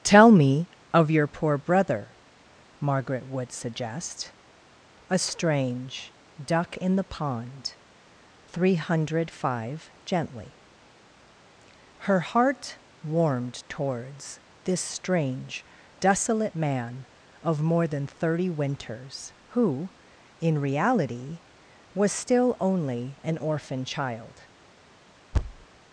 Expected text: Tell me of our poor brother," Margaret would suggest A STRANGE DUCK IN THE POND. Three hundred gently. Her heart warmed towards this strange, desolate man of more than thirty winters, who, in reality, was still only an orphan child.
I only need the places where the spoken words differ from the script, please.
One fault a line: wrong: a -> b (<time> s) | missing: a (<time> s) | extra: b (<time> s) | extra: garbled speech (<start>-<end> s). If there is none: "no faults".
wrong: our -> your (1.1 s)
extra: five (9.3 s)